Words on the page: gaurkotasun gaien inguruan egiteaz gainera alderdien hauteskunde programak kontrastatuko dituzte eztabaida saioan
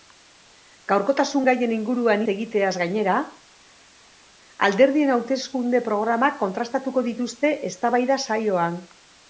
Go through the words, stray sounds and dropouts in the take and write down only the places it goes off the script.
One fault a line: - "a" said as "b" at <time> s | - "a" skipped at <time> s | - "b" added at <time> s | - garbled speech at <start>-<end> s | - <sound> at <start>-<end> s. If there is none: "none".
none